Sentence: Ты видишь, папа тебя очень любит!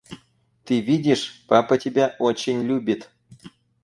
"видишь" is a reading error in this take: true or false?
false